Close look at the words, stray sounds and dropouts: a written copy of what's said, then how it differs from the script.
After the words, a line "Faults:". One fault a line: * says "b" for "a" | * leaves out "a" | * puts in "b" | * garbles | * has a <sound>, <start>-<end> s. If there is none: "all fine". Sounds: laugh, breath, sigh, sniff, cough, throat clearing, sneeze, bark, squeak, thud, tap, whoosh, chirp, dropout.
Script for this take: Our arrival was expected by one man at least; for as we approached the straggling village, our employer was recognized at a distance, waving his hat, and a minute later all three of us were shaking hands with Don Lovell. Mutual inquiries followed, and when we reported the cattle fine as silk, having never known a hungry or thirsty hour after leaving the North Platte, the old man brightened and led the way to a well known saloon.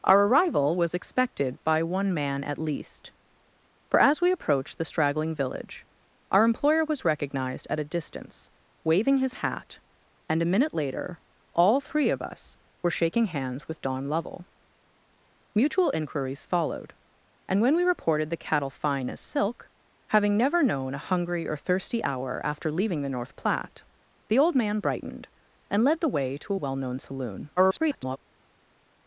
Our arrival was expected by one man at least; for as we approached the straggling village, our employer was recognized at a distance, waving his hat, and a minute later all three of us were shaking hands with Don Lovell. Mutual inquiries followed, and when we reported the cattle fine as silk, having never known a hungry or thirsty hour after leaving the North Platte, the old man brightened and led the way to a well known saloon. [garbled]
Faults:
* garbles